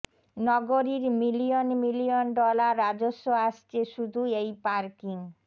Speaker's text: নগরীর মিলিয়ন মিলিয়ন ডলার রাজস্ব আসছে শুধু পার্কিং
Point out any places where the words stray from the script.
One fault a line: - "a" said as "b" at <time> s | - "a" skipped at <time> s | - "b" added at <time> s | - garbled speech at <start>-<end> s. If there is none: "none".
- "এই" added at 4.4 s